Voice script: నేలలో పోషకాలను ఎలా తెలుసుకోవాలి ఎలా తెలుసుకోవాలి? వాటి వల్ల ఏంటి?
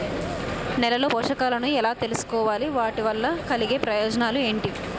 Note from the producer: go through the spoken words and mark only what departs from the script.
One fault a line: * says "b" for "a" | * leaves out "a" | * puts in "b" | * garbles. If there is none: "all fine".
* says "వాటి వల్ల కలిగే ప్రయోజనాలు" for "ఎలా తెలుసుకోవాలి వాటి వల్ల"